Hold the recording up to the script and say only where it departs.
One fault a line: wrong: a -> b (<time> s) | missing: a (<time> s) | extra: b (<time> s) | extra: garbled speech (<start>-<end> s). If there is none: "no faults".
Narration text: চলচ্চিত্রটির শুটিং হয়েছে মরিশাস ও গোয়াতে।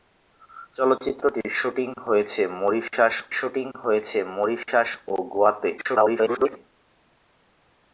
extra: শুটিং হয়েছে মরিশাস (3.4 s)
extra: garbled speech (5.8-6.6 s)